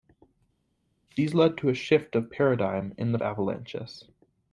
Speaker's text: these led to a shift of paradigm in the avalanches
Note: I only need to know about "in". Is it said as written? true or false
true